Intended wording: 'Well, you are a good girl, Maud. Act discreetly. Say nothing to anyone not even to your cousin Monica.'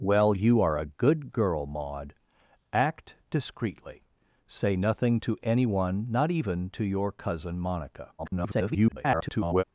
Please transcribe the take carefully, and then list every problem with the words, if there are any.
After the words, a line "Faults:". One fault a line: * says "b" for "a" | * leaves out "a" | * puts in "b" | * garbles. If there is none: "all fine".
'Well, you are a good girl, Maud. Act discreetly. Say nothing to anyone not even to your cousin Monica.' [garbled]
Faults:
* garbles